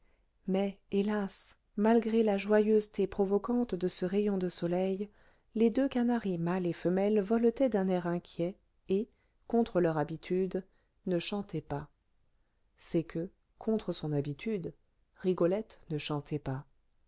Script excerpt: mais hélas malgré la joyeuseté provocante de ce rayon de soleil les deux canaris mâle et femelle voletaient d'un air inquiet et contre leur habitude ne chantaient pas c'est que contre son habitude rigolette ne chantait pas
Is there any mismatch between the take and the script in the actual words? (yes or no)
no